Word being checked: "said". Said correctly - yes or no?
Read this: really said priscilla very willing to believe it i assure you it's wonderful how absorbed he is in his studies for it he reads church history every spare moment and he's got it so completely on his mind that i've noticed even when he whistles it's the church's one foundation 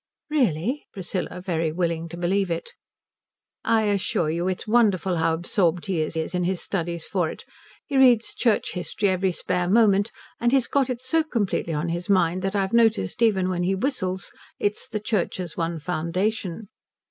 no